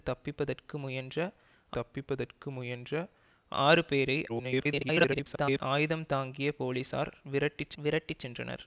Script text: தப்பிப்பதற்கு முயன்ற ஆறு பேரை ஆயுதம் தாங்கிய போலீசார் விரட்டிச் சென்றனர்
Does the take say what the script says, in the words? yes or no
no